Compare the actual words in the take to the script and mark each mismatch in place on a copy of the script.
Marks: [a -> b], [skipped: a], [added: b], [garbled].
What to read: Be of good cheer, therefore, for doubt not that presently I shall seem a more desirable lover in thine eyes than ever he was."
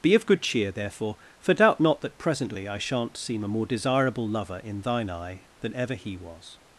Be of good cheer, therefore, for doubt not that presently I [shall -> shan't] seem a more desirable lover in thine [eyes -> eye] than ever he was."